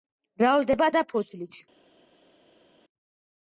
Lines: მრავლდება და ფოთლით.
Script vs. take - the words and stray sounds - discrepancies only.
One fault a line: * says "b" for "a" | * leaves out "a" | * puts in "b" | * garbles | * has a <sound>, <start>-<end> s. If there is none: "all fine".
all fine